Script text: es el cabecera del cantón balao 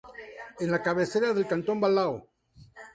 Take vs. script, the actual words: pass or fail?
fail